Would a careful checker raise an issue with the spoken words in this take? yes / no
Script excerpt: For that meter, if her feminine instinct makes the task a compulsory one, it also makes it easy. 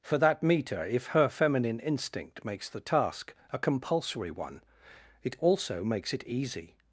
no